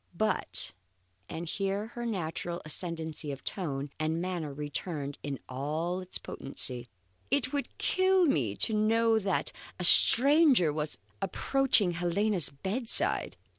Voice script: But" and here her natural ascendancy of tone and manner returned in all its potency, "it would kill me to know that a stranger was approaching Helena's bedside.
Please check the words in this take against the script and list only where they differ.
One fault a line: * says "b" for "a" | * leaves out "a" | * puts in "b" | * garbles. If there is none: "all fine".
all fine